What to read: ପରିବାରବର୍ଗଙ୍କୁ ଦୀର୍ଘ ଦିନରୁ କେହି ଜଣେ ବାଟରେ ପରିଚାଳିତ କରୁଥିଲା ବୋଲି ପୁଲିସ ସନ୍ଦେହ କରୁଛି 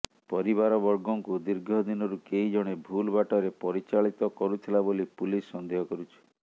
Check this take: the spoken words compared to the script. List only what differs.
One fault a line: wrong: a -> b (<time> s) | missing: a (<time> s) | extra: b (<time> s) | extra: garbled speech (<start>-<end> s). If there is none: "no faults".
extra: ଭୁଲ (2.9 s)